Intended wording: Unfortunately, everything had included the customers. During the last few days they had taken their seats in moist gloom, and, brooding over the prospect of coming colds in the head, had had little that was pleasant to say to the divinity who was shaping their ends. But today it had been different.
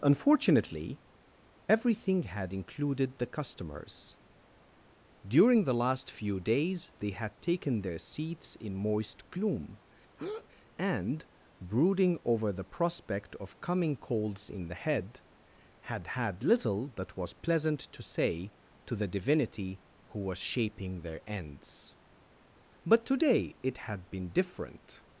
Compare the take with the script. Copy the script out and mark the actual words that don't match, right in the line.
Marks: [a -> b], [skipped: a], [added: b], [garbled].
Unfortunately, everything had included the customers. During the last few days they had taken their seats in moist gloom, and, brooding over the prospect of coming colds in the head, had had little that was pleasant to say to the divinity who was shaping their ends. But today it had been different.